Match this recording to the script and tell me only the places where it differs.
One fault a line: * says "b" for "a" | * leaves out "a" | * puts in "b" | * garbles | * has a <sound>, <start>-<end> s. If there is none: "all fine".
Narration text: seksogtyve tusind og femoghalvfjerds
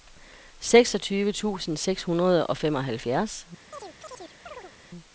* puts in "seks hundrede"
* has a chirp, 3.7-4.7 s